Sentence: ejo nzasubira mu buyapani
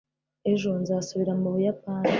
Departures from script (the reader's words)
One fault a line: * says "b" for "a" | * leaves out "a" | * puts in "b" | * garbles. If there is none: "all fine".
all fine